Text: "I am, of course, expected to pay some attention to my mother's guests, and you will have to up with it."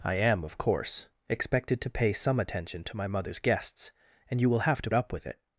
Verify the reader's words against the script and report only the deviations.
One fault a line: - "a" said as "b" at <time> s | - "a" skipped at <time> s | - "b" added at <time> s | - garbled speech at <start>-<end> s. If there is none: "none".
none